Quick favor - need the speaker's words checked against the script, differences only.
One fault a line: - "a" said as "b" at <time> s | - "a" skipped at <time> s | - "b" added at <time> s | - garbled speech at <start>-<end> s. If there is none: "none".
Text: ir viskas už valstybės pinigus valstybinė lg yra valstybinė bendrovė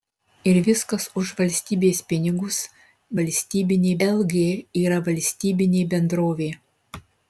none